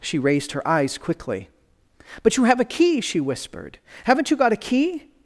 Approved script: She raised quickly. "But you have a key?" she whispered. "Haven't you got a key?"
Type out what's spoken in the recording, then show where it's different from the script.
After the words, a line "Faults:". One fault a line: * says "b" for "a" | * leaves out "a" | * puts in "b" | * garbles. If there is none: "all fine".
She raised her eyes quickly. "But you have a key?" she whispered. "Haven't you got a key?"
Faults:
* puts in "her eyes"